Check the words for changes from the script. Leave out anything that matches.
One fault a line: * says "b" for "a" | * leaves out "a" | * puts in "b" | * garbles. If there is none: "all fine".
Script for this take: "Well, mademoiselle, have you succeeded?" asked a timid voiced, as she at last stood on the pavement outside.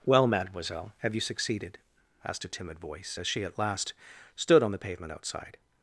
* says "voice" for "voiced"